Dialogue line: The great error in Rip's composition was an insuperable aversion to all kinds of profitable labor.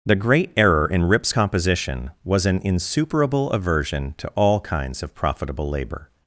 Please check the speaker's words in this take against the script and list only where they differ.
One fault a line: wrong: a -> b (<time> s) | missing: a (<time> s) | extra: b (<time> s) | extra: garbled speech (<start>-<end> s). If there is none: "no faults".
no faults